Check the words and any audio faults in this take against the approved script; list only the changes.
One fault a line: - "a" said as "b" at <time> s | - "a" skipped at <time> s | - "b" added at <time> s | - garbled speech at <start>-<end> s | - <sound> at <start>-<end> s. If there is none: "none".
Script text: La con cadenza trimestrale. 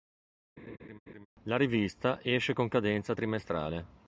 - laugh at 0.6-1.3 s
- "rivista esce" added at 1.6 s